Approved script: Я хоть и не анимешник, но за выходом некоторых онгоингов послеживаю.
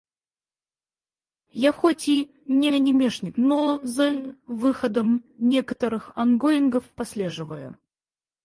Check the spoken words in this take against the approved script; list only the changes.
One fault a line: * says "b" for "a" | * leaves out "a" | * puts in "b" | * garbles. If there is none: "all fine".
all fine